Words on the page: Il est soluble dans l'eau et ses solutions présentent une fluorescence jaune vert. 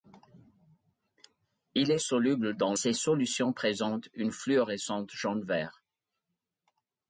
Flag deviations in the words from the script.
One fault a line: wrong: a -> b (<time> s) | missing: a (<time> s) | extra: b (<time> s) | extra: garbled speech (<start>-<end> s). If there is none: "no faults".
missing: l'eau et (2.7 s)